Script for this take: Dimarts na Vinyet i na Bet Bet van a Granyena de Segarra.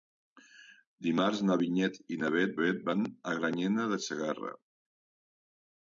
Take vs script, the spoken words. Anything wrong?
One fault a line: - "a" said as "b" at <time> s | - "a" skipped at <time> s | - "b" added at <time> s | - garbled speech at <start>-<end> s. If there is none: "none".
none